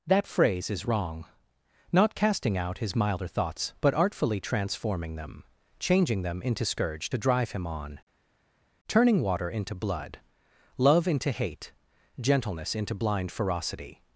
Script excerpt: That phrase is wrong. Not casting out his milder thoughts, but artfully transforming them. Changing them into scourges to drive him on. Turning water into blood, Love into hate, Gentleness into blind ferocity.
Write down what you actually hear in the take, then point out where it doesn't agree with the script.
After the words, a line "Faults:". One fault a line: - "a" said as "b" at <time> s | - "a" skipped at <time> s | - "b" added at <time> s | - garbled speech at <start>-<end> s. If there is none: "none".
That phrase is wrong. Not casting out his milder thoughts, but artfully transforming them. Changing them into scourge to drive him on. Turning water into blood, Love into hate, Gentleness into blind ferocity.
Faults:
- "scourges" said as "scourge" at 6.7 s